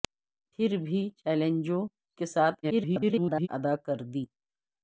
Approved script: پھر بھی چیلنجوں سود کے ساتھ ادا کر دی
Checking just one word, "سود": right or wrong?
wrong